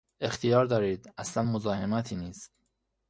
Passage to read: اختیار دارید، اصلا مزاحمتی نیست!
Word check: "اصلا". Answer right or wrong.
right